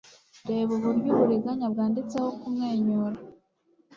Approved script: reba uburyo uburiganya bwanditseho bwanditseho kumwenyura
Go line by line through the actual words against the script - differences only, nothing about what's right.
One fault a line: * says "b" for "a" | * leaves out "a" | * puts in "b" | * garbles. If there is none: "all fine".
* leaves out "bwanditseho"